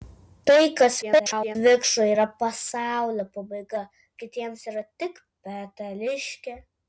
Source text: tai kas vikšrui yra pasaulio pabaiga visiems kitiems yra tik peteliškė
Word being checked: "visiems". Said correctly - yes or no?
no